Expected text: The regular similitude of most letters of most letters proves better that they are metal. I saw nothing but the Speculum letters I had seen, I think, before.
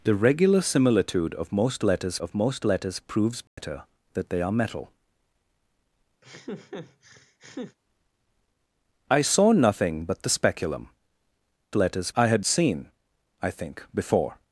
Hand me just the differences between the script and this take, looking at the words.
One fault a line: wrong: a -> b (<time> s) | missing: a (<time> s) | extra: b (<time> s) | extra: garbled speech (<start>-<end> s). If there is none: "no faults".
no faults